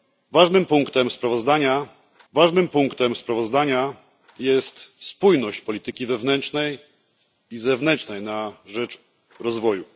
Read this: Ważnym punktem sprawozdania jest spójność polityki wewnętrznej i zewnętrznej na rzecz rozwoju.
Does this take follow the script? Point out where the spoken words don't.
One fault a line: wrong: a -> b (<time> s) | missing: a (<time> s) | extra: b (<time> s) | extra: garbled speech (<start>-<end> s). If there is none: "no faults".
extra: ważnym punktem sprawozdania (2.3 s)